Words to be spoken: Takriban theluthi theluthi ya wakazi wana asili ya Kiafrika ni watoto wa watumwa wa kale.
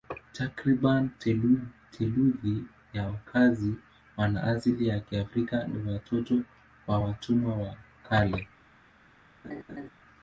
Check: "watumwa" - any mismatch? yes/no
no